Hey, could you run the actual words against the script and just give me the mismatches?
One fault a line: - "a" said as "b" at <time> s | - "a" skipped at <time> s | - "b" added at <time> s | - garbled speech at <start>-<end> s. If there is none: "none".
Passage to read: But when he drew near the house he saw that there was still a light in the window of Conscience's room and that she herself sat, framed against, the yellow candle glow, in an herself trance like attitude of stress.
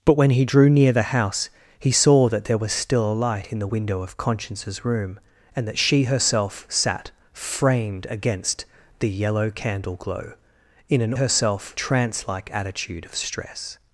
none